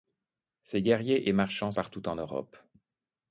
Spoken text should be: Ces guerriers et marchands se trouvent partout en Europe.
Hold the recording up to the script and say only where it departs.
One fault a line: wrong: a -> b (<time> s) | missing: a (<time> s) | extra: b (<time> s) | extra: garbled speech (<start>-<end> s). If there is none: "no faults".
missing: se trouvent (1.7 s)